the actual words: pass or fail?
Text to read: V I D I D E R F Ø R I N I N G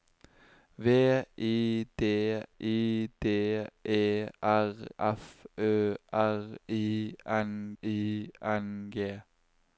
pass